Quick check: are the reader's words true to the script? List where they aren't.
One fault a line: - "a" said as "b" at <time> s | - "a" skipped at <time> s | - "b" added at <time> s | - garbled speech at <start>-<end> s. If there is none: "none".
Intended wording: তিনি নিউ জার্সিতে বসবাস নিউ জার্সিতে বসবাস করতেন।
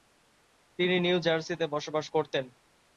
- "নিউ জার্সিতে বসবাস" skipped at 2.0 s